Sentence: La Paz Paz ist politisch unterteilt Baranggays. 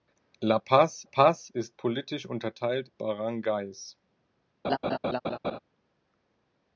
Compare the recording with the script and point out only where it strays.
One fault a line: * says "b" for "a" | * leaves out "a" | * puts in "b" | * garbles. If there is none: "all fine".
all fine